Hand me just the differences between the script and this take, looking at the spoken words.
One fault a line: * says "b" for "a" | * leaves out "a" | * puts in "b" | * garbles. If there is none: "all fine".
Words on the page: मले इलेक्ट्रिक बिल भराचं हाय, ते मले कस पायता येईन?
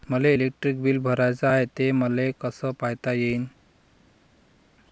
all fine